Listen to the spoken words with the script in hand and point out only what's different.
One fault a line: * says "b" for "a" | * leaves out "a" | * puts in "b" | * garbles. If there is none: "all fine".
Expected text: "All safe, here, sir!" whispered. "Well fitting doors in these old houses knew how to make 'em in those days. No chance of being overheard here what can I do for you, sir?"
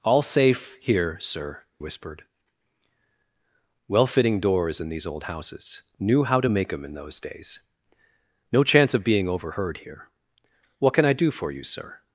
all fine